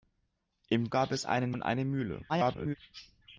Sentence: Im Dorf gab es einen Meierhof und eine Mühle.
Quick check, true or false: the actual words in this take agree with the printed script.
false